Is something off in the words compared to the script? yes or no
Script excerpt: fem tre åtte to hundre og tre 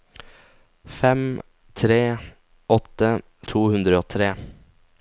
no